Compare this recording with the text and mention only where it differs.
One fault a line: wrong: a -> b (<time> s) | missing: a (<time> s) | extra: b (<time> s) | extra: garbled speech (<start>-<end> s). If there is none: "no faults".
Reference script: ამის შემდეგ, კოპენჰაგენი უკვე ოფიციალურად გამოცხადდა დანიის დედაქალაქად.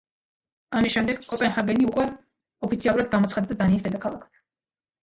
no faults